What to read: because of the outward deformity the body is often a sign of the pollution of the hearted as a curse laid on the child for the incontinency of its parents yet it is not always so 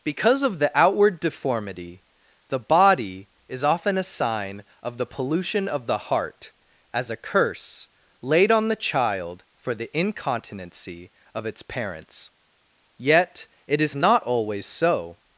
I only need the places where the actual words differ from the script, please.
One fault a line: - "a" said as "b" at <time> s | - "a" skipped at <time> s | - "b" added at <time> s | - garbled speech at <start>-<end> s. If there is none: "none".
- "hearted" said as "heart" at 6.0 s